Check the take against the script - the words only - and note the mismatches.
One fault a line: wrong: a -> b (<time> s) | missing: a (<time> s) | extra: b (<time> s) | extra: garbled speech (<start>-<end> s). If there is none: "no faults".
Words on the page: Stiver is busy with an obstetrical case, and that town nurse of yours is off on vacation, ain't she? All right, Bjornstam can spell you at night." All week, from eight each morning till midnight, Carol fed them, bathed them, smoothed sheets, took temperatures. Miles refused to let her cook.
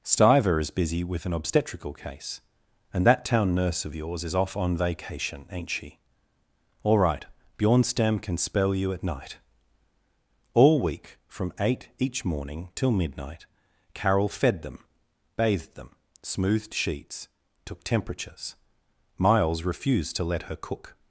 no faults